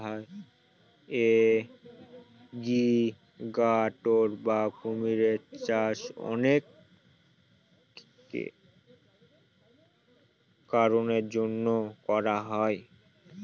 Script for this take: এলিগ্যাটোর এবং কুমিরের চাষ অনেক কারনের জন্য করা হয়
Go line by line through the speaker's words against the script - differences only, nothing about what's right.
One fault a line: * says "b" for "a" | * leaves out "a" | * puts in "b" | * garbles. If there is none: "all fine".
* says "বা" for "এবং"